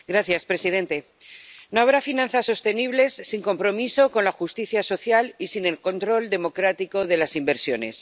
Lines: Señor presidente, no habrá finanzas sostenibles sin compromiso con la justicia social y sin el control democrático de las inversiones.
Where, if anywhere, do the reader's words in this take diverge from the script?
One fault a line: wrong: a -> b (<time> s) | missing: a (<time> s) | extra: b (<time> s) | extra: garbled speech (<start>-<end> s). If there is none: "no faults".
no faults